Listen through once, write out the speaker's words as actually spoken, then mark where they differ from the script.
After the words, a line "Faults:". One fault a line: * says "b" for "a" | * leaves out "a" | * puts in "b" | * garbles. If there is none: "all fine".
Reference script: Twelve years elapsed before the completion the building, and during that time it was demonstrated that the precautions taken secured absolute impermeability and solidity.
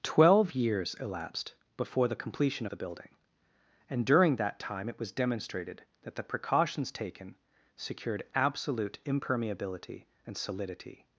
Twelve years elapsed before the completion the building, and during that time it was demonstrated that the precautions taken secured absolute impermeability and solidity.
Faults:
all fine